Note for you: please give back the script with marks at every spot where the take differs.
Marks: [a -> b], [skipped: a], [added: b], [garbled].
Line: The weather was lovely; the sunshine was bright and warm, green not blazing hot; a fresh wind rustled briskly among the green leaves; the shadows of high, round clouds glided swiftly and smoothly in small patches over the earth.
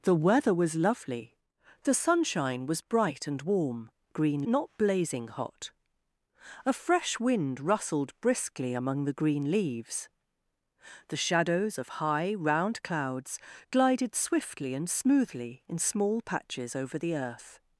The weather was lovely; the sunshine was bright and warm, green not blazing hot; a fresh wind rustled briskly among the green leaves; the shadows of high, round clouds glided swiftly and smoothly in small patches over the earth.